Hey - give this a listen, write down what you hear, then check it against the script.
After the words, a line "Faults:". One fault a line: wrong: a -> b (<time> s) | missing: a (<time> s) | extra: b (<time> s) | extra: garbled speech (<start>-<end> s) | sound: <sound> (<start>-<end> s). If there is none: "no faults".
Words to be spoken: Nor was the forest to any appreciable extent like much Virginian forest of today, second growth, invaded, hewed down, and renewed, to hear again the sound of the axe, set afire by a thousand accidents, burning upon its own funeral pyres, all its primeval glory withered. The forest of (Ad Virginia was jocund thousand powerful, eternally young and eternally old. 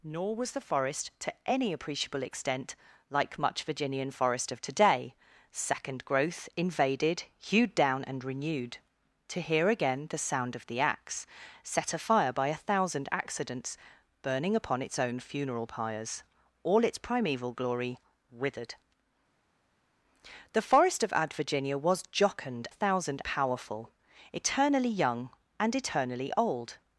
Nor was the forest to any appreciable extent like much Virginian forest of today, second growth, invaded, hewed down, and renewed, to hear again the sound of the axe, set afire by a thousand accidents, burning upon its own funeral pyres, all its primeval glory withered. The forest of (Ad Virginia was jocund thousand powerful, eternally young and eternally old.
Faults:
no faults